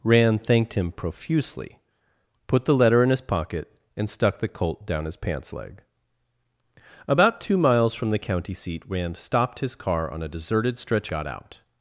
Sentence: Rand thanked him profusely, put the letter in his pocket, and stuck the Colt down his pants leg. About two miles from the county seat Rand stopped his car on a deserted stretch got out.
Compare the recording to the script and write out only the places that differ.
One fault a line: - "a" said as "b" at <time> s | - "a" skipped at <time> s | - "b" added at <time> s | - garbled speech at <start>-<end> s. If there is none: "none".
none